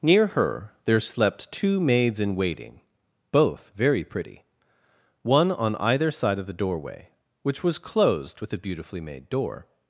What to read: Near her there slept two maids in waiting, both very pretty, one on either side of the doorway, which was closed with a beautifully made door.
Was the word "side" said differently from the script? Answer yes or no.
no